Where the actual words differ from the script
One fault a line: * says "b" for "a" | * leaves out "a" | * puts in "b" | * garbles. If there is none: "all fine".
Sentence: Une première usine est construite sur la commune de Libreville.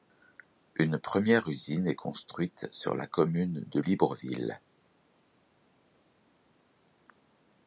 all fine